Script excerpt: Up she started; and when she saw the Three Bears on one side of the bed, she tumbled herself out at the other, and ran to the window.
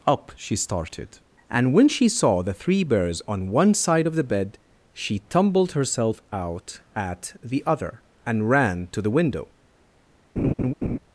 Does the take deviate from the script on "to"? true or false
false